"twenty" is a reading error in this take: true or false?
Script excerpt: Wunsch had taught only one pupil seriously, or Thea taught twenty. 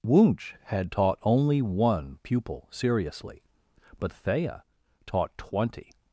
false